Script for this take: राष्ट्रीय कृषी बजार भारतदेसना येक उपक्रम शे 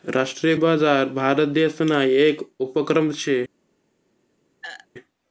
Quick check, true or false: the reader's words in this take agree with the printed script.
false